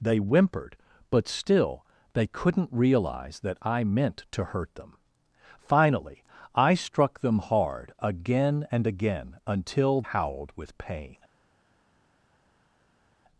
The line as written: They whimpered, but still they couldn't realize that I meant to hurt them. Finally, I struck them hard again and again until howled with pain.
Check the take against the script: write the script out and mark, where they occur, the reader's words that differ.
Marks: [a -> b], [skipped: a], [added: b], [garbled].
They whimpered, but still they couldn't realize that I meant to hurt them. Finally, I struck them hard again and again until howled with pain.